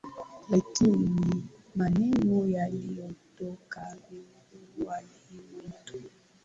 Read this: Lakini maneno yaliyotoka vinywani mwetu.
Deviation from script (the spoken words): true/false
false